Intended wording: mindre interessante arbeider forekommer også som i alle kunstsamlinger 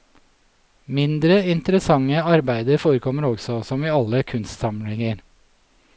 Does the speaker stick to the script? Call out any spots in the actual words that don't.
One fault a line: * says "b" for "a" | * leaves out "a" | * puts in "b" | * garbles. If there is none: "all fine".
all fine